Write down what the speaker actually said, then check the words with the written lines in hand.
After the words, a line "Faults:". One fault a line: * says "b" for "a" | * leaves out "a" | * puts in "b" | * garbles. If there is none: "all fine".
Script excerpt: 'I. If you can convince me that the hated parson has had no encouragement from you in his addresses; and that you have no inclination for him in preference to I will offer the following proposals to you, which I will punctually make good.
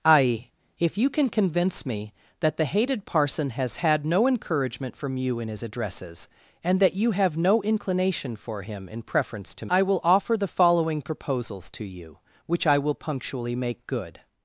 'I. If you can convince me that the hated parson has had no encouragement from you in his addresses; and that you have no inclination for him in preference to I will offer the following proposals to you, which I will punctually make good.
Faults:
all fine